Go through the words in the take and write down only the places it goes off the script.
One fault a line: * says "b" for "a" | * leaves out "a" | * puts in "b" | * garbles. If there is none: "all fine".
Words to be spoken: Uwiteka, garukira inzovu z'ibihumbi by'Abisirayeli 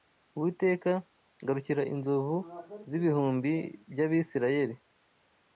all fine